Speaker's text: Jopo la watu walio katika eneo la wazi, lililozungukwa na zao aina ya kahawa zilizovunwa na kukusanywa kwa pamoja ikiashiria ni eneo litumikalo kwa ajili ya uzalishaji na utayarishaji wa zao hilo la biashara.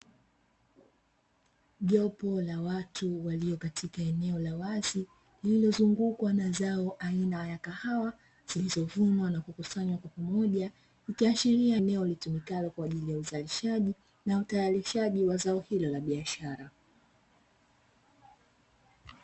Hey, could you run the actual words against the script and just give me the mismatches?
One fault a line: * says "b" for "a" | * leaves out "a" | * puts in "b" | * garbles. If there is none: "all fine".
* leaves out "ni"